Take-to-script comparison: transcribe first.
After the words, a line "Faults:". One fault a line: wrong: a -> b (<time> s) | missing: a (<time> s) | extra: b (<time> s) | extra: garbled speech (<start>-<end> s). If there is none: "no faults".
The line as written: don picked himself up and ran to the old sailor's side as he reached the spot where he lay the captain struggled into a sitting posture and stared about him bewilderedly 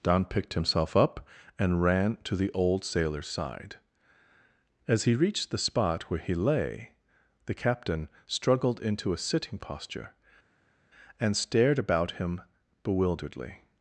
don picked himself up and ran to the old sailor's side as he reached the spot where he lay the captain struggled into a sitting posture and stared about him bewilderedly
Faults:
no faults